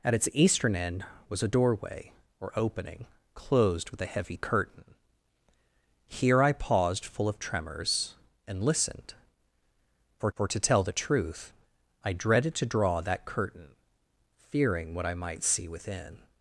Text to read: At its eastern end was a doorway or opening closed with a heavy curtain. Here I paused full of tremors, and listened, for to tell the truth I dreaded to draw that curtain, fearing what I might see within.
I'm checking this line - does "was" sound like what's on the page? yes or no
yes